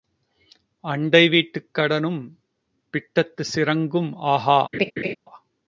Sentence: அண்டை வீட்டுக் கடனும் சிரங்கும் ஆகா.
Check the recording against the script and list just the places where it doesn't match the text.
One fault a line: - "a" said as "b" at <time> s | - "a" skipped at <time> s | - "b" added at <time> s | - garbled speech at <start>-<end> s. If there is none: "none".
- "பிட்டத்துச்" added at 2.9 s